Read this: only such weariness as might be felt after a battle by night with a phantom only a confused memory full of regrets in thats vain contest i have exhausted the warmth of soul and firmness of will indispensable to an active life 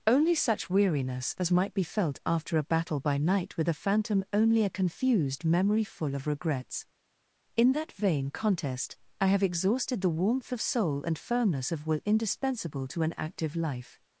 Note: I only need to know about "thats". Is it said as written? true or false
false